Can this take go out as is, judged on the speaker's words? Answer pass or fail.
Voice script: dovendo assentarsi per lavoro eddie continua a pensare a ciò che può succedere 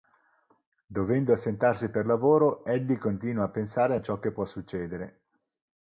pass